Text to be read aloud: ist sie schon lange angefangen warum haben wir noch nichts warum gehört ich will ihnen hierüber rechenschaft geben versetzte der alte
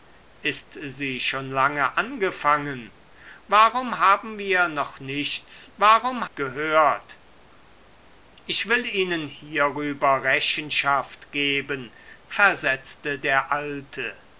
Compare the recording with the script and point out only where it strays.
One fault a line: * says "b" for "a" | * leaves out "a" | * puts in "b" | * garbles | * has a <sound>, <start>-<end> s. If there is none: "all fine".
all fine